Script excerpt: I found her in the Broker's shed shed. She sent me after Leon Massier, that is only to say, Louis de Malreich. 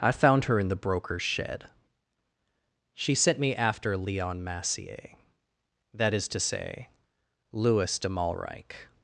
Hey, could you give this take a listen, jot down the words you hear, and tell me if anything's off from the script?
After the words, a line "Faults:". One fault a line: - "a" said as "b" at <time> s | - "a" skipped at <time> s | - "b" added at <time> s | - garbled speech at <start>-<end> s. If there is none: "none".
I found her in the Broker's shed. She sent me after Leon Massier, that is to say, Louis de Malreich.
Faults:
- "shed" skipped at 1.7 s
- "only" skipped at 6.3 s